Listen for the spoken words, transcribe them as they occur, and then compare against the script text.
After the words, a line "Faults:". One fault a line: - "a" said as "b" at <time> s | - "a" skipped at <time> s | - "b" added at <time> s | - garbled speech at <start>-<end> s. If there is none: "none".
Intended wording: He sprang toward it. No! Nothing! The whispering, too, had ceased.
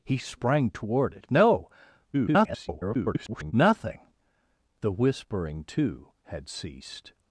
He sprang toward it. No! [garbled] Nothing! The whispering, too, had ceased.
Faults:
- garbled speech at 2.1-3.5 s